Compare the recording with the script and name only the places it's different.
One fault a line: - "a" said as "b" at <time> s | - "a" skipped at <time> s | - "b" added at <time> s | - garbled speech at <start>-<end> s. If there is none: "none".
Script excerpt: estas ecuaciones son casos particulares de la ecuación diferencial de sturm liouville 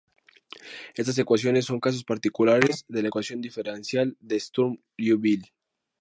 none